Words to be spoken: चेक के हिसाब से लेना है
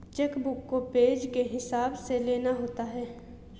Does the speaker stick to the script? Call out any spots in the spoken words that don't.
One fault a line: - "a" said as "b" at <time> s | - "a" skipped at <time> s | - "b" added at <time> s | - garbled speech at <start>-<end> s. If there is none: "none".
- "बुक को पेज" added at 0.4 s
- "होता" added at 2.5 s